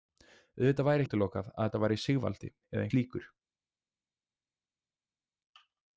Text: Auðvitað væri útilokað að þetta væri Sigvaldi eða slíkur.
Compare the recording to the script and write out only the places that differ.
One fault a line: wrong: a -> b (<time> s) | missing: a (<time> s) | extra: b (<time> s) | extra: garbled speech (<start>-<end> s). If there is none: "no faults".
no faults